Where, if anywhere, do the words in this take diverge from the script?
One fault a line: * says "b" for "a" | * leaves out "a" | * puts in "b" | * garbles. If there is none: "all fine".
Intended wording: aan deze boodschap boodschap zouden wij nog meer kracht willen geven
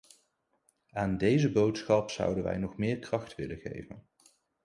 * leaves out "boodschap"